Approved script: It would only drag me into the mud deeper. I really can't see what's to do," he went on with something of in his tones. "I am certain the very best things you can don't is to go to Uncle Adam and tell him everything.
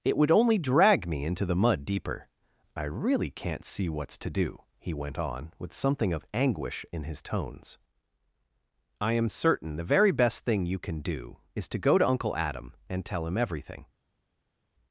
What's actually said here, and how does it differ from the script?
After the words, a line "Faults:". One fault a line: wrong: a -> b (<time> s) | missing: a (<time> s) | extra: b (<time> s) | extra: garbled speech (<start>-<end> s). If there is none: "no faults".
It would only drag me into the mud deeper. I really can't see what's to do," he went on with something of anguish in his tones. "I am certain the very best thing you can do is to go to Uncle Adam and tell him everything.
Faults:
extra: anguish (6.3 s)
wrong: things -> thing (10.4 s)
wrong: don't -> do (11.0 s)